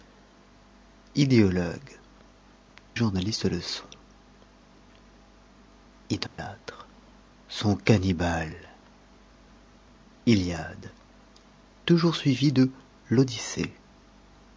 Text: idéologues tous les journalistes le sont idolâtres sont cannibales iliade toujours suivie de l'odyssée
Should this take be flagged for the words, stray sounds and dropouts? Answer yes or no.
yes